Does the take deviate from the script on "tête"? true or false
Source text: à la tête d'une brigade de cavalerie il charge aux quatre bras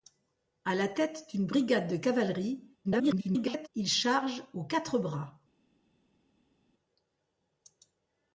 false